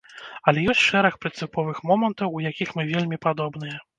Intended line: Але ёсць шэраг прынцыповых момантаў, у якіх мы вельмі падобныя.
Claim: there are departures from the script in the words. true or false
false